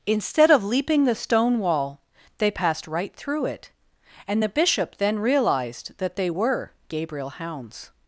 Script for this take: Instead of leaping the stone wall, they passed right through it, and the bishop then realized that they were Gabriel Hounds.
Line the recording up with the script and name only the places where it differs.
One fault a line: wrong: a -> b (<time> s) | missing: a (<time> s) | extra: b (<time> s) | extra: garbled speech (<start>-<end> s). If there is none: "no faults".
no faults